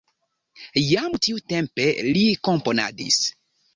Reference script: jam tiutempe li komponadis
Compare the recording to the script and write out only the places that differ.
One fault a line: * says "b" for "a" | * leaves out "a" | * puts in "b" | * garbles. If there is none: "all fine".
all fine